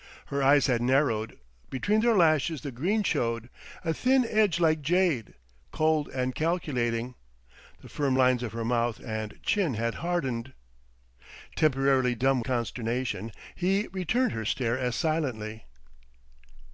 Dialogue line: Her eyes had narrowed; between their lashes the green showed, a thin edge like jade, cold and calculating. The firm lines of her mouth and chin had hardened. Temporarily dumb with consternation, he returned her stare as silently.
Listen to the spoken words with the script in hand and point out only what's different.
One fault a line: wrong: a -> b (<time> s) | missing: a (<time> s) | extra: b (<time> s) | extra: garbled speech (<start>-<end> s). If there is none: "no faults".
missing: with (12.4 s)